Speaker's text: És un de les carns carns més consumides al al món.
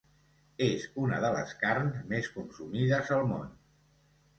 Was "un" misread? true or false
true